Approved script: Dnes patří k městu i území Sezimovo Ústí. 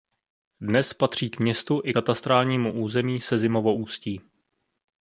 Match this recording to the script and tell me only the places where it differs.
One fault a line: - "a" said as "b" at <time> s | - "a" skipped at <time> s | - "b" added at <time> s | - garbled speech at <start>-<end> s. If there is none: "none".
- "katastrálnímu" added at 1.9 s